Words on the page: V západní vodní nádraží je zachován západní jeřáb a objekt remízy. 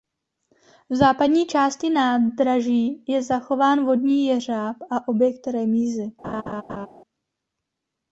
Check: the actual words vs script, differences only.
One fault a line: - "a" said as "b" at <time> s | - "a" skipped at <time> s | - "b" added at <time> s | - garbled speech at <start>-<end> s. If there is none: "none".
- "vodní" said as "části" at 1.4 s
- "západní" said as "vodní" at 3.9 s